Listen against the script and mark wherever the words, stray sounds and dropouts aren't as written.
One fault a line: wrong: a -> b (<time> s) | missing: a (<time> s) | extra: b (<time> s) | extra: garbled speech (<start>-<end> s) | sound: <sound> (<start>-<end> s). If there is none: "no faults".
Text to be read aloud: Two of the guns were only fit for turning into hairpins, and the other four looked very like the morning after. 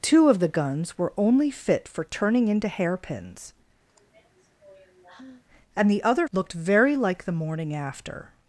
sound: sigh (3.9-5.4 s)
missing: four (6.3 s)